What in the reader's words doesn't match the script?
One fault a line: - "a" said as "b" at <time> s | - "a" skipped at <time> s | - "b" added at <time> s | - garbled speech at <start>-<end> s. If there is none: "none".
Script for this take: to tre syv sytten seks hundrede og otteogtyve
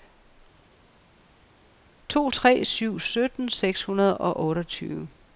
none